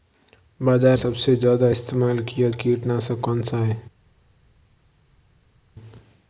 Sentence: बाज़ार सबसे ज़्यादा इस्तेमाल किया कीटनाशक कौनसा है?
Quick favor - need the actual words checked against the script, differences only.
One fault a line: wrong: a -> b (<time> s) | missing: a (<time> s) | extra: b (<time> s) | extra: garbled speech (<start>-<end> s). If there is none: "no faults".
no faults